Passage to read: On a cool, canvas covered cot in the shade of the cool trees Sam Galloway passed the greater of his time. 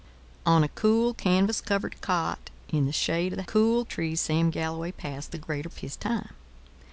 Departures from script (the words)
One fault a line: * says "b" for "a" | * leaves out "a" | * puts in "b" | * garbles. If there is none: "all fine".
all fine